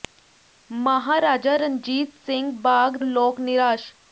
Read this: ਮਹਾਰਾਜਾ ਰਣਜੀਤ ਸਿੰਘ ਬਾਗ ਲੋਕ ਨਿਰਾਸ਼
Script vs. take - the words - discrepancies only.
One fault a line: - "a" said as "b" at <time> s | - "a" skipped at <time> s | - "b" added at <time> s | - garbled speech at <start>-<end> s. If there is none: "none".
none